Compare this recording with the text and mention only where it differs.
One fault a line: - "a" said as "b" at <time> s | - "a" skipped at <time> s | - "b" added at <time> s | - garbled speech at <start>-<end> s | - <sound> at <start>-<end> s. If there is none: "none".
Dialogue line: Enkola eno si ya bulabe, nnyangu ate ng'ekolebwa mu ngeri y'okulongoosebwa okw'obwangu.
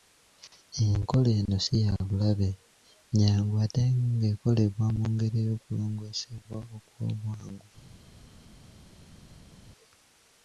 none